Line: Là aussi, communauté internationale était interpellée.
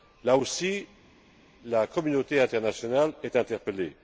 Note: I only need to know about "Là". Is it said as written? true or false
true